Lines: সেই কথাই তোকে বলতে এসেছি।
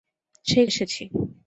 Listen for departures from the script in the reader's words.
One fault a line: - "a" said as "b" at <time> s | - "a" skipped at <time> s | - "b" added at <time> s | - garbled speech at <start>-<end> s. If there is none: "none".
- "কথাই তোকে বলতে" skipped at 0.7 s